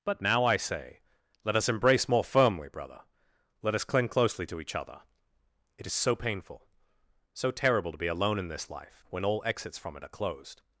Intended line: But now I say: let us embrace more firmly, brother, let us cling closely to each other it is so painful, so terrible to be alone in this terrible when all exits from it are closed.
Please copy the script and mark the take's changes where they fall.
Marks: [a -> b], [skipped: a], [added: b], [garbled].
But now I say: let us embrace more firmly, brother, let us cling closely to each other it is so painful, so terrible to be alone in this [terrible -> life] when all exits from it are closed.